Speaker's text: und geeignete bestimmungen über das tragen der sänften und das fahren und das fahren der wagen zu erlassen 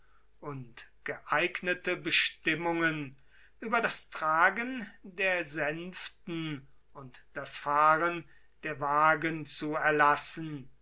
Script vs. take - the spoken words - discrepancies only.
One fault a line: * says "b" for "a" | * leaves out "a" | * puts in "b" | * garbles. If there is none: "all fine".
* leaves out "und das fahren"